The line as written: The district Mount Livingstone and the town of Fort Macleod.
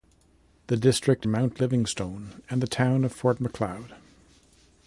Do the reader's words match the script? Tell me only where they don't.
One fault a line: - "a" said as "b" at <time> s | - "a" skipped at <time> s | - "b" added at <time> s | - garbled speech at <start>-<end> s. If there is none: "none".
none